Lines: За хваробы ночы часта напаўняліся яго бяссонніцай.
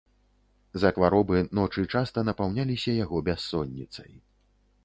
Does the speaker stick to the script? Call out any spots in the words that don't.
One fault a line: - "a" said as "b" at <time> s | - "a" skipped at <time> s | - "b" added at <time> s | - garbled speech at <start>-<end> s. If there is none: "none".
none